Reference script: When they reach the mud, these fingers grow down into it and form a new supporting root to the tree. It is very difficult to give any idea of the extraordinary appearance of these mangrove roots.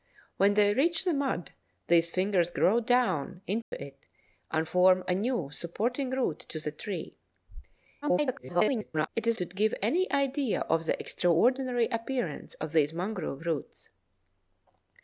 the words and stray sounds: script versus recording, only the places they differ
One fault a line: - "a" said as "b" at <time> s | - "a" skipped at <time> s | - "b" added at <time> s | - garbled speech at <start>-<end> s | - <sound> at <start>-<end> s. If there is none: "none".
- dropout at 3.6-3.7 s
- garbled speech at 8.0-9.1 s
- "very difficult" skipped at 9.4 s